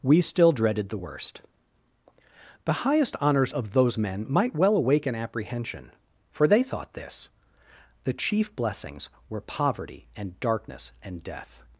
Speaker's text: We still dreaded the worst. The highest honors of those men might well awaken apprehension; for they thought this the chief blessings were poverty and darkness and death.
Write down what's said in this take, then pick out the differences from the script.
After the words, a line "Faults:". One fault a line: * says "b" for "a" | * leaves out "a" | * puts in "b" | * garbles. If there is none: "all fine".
We still dreaded the worst. The highest honors of those men might well awaken apprehension; for they thought this the chief blessings were poverty and darkness and death.
Faults:
all fine